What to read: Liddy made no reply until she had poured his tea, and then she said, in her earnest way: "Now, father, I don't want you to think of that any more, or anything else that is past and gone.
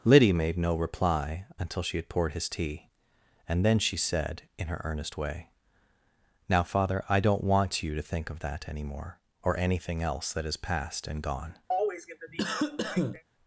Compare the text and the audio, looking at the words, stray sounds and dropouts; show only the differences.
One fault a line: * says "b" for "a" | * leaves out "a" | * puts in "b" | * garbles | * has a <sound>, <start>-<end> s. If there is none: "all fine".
* has a cough, 11.7-13.2 s